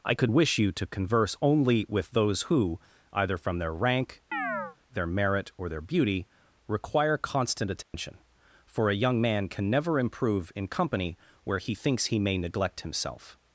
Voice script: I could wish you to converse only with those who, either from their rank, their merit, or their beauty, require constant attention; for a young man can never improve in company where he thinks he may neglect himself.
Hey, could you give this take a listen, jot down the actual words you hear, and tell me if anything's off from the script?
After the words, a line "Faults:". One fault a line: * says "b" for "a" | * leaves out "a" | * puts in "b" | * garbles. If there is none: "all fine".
I could wish you to converse only with those who, either from their rank, their merit, or their beauty, require constant attention; for a young man can never improve in company where he thinks he may neglect himself.
Faults:
all fine